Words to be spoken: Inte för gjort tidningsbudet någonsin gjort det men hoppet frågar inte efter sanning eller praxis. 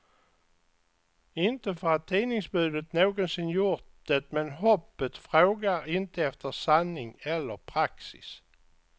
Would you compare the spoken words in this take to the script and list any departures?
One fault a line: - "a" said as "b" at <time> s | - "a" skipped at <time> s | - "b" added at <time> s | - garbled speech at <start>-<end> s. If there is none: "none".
- "gjort" said as "att" at 1.9 s